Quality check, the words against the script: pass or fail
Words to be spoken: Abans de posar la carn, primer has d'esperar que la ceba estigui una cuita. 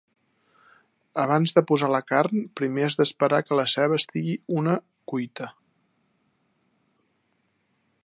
pass